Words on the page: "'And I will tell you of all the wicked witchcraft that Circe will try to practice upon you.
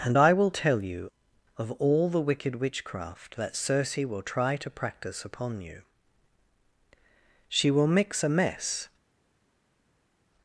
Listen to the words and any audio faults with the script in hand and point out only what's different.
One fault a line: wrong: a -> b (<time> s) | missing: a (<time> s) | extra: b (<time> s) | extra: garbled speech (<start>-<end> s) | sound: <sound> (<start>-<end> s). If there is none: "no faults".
extra: She will mix a mess (7.5 s)